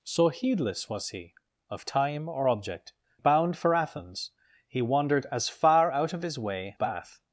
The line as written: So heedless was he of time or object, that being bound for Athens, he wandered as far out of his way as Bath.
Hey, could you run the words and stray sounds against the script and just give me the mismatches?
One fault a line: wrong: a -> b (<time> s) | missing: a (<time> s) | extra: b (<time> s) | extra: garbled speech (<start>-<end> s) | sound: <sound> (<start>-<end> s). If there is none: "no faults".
missing: that being (2.9 s)
missing: as (6.8 s)